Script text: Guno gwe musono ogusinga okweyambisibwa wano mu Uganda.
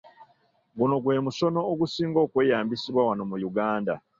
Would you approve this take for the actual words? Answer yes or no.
yes